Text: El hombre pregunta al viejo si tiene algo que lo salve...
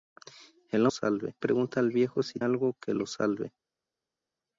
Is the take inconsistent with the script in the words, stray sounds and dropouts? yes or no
yes